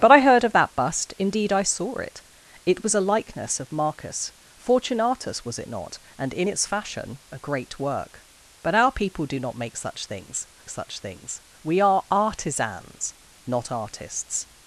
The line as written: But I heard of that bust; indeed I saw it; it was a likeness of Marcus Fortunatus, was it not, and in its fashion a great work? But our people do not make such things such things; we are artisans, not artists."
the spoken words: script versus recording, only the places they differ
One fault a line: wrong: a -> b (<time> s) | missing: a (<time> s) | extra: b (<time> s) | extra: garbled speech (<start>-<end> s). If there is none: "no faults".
no faults